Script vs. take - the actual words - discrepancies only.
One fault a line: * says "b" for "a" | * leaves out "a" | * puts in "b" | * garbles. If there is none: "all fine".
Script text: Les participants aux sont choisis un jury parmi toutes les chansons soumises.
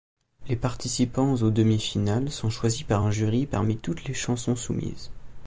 * puts in "demi finales"
* puts in "par"